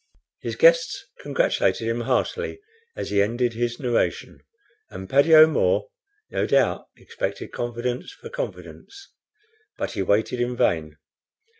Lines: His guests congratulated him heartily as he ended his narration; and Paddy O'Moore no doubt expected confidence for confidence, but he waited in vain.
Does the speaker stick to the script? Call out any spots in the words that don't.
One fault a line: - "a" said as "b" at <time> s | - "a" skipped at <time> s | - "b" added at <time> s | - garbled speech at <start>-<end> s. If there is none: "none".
none